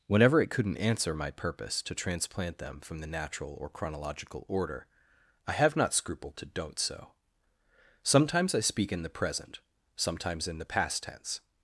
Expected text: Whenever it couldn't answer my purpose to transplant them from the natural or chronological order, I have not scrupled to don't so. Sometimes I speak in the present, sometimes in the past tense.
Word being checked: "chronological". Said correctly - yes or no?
yes